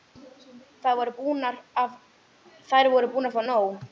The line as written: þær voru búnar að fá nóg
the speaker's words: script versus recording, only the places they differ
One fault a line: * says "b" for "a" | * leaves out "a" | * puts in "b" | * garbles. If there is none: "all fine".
all fine